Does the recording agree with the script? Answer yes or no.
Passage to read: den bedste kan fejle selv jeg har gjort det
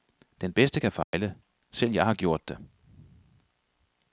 yes